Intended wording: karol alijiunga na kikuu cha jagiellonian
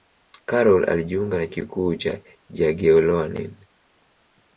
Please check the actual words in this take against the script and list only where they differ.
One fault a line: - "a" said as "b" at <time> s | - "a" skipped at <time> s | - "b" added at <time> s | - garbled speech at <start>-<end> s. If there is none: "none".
none